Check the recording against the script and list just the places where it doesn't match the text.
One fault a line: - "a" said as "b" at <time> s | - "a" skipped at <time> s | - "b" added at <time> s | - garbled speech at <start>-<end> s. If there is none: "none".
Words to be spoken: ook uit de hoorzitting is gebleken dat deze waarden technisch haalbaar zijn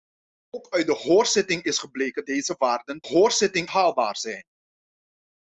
- "dat" skipped at 2.2 s
- "technisch" said as "hoorzitting" at 3.0 s